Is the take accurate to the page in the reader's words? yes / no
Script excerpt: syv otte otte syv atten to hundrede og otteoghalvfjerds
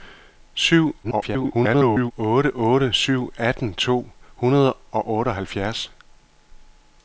no